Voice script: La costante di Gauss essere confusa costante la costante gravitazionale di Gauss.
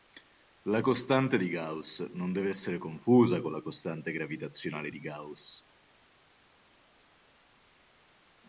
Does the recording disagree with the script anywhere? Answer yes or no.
yes